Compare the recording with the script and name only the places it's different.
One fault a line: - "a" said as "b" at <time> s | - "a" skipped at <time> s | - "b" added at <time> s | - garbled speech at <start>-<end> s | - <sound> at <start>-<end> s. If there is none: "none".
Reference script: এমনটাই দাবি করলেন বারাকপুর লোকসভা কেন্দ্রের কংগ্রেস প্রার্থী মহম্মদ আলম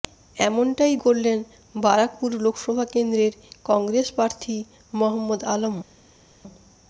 - "দাবি" skipped at 0.9 s